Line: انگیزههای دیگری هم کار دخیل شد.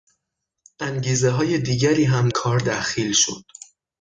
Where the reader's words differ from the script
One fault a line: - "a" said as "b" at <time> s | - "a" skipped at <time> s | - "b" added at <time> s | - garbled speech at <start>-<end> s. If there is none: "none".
none